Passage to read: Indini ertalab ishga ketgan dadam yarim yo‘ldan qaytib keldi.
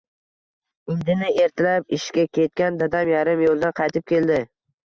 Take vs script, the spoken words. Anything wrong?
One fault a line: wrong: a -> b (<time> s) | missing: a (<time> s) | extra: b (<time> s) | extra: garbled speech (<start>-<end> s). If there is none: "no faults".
no faults